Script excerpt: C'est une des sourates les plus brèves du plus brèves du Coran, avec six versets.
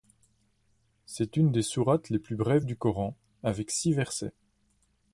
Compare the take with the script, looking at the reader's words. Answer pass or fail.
fail